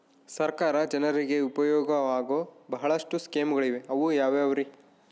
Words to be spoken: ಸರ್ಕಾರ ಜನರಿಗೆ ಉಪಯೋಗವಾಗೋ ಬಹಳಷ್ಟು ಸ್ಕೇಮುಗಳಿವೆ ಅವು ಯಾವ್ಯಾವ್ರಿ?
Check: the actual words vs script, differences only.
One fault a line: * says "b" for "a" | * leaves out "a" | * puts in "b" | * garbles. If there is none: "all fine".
all fine